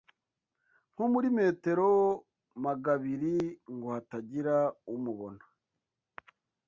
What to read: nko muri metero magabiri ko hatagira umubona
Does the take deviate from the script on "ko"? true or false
true